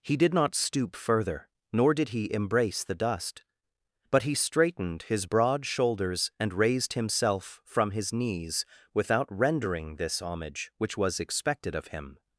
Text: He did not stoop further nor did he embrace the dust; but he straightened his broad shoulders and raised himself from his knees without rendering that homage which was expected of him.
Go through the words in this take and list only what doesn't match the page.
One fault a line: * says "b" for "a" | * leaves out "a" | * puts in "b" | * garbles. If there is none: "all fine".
* says "this" for "that"